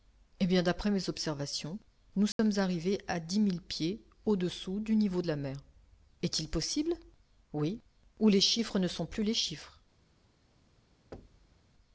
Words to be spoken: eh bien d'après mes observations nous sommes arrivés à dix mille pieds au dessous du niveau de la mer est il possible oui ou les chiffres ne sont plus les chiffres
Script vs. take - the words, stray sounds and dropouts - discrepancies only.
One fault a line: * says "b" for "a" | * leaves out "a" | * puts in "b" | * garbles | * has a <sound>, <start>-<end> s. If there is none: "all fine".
* has a dropout, 2.3-2.4 s
* has a thud, 11.1-11.6 s